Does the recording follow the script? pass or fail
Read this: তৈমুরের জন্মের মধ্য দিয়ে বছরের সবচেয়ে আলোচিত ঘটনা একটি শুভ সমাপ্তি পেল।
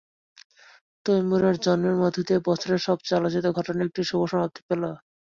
pass